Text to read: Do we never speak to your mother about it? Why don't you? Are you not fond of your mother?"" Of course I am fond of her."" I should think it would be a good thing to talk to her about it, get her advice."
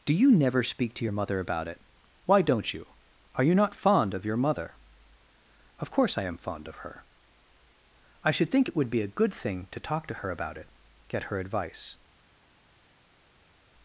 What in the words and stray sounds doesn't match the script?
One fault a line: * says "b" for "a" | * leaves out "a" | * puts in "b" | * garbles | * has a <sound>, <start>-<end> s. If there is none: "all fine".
* says "you" for "we"